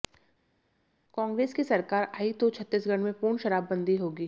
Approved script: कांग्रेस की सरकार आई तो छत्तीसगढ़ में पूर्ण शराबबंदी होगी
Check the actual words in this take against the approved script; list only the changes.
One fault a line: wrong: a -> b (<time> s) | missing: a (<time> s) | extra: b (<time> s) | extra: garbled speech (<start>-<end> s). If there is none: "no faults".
no faults